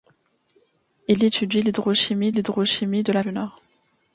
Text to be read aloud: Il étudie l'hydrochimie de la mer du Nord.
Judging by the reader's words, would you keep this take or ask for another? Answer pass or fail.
fail